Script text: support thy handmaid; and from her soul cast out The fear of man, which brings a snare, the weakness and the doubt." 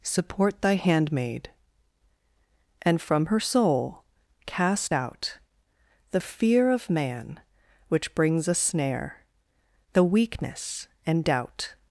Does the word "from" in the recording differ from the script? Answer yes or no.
no